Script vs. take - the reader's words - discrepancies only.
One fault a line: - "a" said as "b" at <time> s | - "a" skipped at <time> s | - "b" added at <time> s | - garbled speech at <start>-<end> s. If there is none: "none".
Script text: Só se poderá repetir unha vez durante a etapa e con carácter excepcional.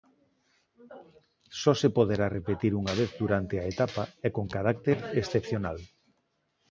none